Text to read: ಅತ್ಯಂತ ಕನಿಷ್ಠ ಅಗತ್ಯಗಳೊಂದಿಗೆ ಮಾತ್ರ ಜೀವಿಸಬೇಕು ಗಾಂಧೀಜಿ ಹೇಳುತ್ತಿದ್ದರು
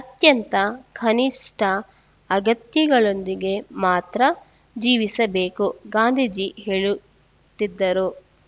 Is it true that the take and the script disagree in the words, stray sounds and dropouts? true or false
false